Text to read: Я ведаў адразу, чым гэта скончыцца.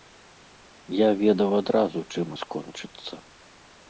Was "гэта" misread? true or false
true